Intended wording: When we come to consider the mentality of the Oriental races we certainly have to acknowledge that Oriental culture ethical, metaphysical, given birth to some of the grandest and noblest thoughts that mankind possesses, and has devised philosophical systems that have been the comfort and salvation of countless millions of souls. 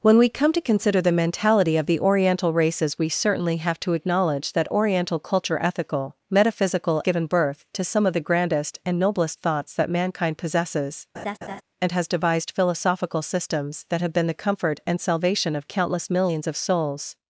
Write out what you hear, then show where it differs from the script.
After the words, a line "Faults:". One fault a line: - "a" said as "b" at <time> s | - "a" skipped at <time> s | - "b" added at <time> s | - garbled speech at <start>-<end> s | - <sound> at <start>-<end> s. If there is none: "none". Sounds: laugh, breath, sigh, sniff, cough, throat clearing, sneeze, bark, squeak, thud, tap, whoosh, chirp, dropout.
When we come to consider the mentality of the Oriental races we certainly have to acknowledge that Oriental culture ethical, metaphysical, given birth to some of the grandest and noblest thoughts that mankind possesses, and has devised philosophical systems that have been the comfort and salvation of countless millions of souls.
Faults:
- laugh at 11.1-11.6 s